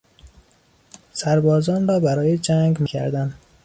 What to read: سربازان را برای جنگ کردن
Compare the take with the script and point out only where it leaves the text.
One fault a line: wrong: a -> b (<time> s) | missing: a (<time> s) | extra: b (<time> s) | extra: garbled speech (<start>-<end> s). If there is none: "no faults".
no faults